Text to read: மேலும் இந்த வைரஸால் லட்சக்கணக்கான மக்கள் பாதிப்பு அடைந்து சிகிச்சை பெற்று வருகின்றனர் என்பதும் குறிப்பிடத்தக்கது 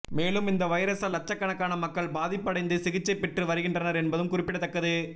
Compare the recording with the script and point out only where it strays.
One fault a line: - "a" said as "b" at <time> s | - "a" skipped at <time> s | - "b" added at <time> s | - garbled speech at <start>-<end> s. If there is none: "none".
none